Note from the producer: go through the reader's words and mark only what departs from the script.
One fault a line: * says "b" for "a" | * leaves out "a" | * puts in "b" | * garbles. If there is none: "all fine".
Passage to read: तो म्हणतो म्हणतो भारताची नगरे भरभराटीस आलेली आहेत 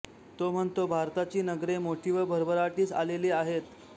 * leaves out "म्हणतो"
* puts in "मोठी व"